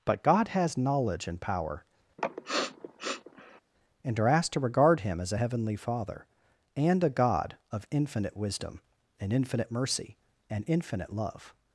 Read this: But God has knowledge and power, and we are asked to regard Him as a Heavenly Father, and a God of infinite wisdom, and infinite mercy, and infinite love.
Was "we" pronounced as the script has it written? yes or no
no